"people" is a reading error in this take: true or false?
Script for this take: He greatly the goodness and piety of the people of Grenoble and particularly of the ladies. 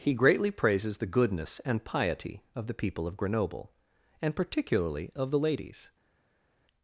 false